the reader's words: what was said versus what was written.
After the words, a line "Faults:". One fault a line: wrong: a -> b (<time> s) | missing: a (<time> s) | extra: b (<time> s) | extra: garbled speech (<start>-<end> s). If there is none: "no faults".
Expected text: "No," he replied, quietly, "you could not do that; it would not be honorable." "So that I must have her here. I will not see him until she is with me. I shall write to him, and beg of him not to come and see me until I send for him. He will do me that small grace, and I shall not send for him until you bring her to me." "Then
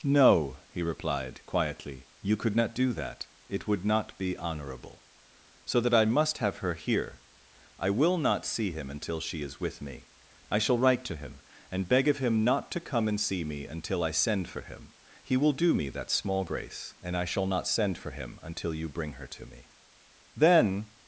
"No," he replied, quietly, "you could not do that; it would not be honorable." "So that I must have her here. I will not see him until she is with me. I shall write to him, and beg of him not to come and see me until I send for him. He will do me that small grace, and I shall not send for him until you bring her to me." "Then
Faults:
no faults